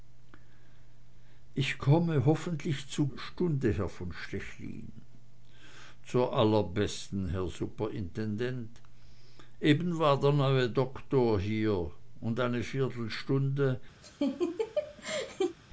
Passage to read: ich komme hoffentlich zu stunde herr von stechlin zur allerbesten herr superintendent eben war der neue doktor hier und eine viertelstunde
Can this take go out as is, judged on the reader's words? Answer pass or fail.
pass